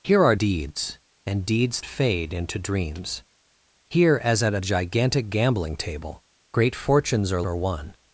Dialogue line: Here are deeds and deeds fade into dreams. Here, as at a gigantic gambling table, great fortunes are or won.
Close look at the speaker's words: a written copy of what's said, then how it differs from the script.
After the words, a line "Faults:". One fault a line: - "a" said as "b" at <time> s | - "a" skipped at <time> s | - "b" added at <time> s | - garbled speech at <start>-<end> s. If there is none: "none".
Here are deeds and deeds fade into dreams. Here, as at a gigantic gambling table, great fortunes are or won.
Faults:
none